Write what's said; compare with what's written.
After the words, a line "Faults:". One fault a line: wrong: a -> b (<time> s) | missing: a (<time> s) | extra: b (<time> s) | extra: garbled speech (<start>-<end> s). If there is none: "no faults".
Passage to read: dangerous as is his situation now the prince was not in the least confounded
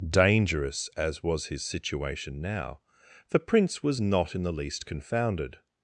dangerous as was his situation now the prince was not in the least confounded
Faults:
wrong: is -> was (1.2 s)